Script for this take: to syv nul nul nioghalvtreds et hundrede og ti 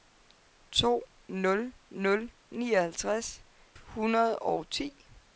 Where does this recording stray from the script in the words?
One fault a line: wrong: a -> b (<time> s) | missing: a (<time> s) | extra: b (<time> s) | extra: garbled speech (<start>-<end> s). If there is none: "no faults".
missing: syv (1.0 s)
missing: et (3.4 s)